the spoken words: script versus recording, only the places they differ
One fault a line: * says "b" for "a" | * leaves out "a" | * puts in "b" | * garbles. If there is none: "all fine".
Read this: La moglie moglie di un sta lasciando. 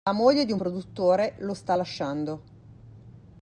* leaves out "moglie"
* puts in "produttore lo"